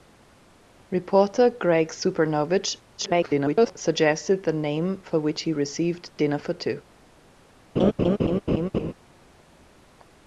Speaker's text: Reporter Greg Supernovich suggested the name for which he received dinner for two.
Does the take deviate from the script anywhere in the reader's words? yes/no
yes